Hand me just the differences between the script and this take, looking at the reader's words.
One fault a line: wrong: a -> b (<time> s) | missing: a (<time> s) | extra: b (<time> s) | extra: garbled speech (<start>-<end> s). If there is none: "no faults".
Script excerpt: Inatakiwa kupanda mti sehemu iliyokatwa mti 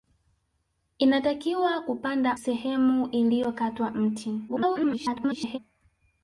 missing: mti (2.4 s)
extra: garbled speech (4.5-5.6 s)